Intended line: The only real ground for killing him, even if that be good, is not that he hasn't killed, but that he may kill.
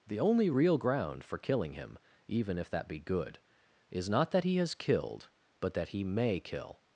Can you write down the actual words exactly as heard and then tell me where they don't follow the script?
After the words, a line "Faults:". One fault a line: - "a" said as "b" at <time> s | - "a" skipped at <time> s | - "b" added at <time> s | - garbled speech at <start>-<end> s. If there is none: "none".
The only real ground for killing him, even if that be good, is not that he has killed, but that he may kill.
Faults:
- "hasn't" said as "has" at 4.6 s